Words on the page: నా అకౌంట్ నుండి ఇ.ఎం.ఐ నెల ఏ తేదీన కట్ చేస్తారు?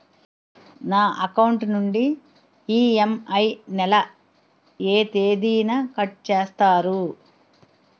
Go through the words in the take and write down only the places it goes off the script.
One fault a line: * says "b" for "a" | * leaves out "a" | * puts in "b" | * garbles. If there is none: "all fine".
all fine